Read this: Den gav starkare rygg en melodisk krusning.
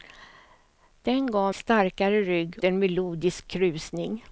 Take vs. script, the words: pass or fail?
pass